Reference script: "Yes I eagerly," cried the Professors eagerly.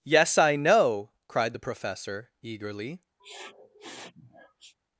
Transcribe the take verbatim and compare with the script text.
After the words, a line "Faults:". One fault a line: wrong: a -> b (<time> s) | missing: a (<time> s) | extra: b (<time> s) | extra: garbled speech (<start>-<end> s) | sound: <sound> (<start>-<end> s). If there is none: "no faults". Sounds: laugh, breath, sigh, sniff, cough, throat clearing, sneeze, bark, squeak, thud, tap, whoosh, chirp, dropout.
"Yes I know," cried the Professor eagerly.
Faults:
wrong: eagerly -> know (0.6 s)
wrong: Professors -> Professor (1.6 s)
sound: sniff (3.2-4.7 s)